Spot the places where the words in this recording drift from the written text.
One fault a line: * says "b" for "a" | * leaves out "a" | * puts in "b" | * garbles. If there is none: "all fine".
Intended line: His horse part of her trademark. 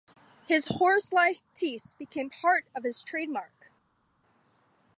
* puts in "like teeth became"
* says "his" for "her"